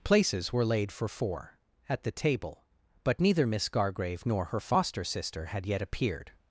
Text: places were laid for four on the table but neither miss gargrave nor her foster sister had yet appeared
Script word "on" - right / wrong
wrong